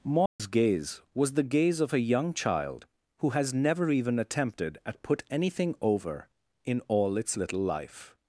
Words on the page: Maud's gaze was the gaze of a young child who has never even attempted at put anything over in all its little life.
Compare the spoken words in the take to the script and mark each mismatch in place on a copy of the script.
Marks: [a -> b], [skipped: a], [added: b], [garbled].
Maud's gaze was the gaze of a young child who has never even attempted at put anything over in all its little life.